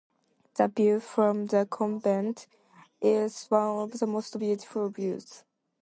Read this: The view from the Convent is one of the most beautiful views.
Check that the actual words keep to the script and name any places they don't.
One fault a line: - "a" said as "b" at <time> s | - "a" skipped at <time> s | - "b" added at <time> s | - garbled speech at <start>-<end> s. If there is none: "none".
none